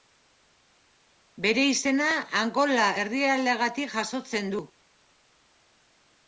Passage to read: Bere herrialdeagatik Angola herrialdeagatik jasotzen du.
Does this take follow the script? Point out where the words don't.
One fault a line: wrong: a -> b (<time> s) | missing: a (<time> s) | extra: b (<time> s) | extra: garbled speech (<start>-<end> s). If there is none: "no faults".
wrong: herrialdeagatik -> izena (1.7 s)